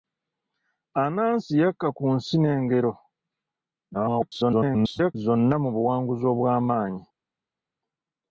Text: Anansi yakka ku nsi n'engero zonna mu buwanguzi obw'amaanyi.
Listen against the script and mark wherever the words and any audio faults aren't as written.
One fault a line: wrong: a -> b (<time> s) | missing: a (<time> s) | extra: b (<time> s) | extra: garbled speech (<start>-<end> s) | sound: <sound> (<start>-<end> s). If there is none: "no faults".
extra: garbled speech (3.9-5.2 s)